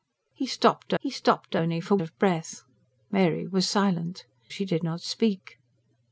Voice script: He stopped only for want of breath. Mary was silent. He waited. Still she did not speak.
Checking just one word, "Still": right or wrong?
wrong